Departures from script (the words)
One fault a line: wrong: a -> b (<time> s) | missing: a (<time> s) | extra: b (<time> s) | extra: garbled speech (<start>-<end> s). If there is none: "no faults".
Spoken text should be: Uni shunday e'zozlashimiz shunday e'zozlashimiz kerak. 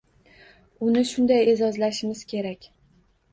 missing: shunday e'zozlashimiz (2.3 s)